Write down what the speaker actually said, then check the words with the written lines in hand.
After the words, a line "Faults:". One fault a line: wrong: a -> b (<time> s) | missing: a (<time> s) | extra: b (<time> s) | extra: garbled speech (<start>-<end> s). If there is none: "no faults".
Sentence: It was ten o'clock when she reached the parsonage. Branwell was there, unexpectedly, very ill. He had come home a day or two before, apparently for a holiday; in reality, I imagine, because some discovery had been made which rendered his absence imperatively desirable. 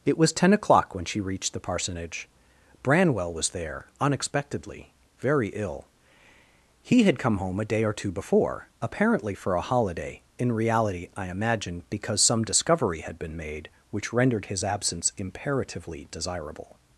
It was ten o'clock when she reached the parsonage. Branwell was there, unexpectedly, very ill. He had come home a day or two before, apparently for a holiday; in reality, I imagine, because some discovery had been made which rendered his absence imperatively desirable.
Faults:
no faults